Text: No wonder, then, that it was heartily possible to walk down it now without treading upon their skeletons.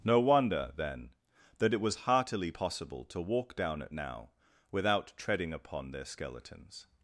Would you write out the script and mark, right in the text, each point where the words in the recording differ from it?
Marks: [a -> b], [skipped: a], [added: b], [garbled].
No wonder, then, that it was heartily possible to walk down it now without treading upon their skeletons.